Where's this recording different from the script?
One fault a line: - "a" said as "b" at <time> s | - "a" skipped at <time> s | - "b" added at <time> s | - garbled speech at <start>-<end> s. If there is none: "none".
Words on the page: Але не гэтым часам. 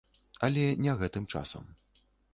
none